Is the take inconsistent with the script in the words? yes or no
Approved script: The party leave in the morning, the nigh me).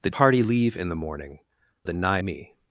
no